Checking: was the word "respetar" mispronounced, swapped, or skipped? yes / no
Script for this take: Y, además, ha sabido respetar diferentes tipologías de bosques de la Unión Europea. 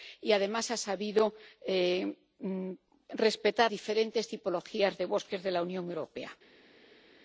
no